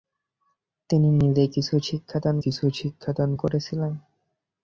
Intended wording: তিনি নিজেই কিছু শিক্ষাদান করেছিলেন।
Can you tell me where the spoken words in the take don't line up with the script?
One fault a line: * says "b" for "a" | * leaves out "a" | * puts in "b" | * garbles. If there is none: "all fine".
* puts in "কিছু শিক্ষাদান"